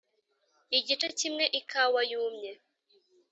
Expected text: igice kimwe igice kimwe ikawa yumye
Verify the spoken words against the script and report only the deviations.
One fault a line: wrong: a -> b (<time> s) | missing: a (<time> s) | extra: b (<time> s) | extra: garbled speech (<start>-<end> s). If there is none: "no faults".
missing: igice kimwe (1.4 s)